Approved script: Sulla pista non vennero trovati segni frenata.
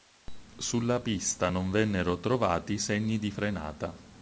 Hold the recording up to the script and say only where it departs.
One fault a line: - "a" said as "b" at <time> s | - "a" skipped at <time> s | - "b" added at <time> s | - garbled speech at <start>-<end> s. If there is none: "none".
- "di" added at 3.2 s